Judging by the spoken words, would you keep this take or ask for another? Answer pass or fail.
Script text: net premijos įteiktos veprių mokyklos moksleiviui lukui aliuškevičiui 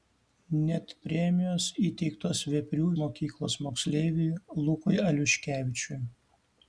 pass